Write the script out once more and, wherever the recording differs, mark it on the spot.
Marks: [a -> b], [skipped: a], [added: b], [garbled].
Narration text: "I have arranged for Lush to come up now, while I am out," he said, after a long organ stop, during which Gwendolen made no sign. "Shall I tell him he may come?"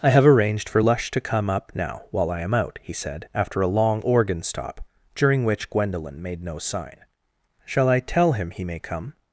"I have arranged for Lush to come up now, while I am out," he said, after a long organ stop, during which Gwendolen made no sign. "Shall I tell him he may come?"